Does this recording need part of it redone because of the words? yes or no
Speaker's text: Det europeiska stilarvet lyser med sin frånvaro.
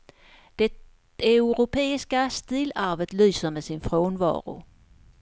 no